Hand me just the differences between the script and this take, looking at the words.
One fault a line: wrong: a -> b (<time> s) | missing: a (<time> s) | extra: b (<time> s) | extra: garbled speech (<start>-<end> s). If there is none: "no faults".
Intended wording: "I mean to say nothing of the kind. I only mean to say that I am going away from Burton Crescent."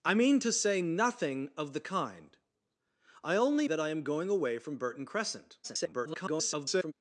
missing: mean to say (3.7 s)
extra: garbled speech (5.6-6.9 s)